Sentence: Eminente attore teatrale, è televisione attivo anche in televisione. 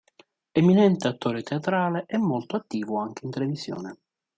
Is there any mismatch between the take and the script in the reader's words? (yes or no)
yes